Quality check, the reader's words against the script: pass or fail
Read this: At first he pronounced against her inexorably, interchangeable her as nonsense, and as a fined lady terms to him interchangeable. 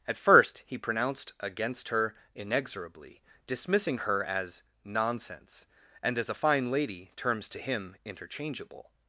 fail